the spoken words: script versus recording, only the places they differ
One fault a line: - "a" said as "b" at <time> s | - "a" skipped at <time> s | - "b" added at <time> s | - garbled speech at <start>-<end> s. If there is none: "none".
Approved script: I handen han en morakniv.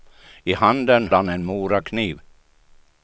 none